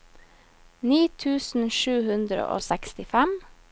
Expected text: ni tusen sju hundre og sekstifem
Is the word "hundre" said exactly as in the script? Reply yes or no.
yes